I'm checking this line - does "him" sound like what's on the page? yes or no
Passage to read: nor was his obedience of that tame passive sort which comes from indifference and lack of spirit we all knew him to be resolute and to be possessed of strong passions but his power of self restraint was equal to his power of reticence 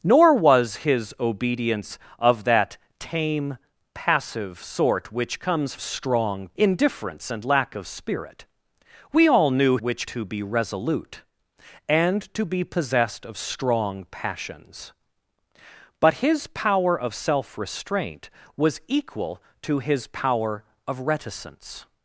no